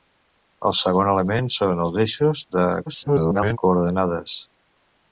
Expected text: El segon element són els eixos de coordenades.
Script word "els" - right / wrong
right